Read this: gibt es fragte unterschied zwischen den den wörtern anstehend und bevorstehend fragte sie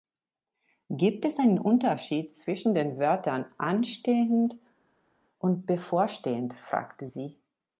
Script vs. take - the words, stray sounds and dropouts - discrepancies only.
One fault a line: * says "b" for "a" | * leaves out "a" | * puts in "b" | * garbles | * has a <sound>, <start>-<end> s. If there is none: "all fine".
* says "einen" for "fragte"
* leaves out "den"